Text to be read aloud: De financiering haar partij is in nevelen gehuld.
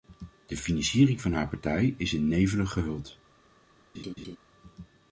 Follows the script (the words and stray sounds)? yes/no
no